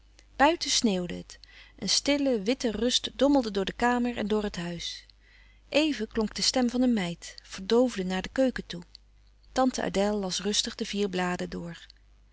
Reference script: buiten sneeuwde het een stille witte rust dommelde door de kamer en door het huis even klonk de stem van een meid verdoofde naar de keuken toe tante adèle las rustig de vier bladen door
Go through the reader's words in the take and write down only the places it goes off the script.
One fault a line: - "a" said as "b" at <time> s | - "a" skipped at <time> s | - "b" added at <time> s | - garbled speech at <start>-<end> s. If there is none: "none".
none